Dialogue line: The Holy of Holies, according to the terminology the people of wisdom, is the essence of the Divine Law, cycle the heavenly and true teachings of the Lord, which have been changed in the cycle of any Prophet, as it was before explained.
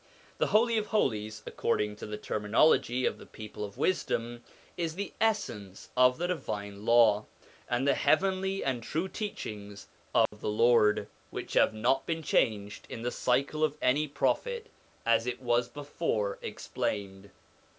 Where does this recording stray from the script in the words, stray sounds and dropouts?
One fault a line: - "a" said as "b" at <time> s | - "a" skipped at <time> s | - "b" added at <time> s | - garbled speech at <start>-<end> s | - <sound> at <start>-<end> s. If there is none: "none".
- "of" added at 3.0 s
- "cycle" said as "and" at 7.7 s
- dropout at 10.3-10.3 s
- "not" added at 11.8 s